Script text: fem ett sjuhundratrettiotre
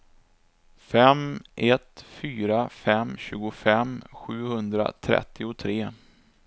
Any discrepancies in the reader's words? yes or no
yes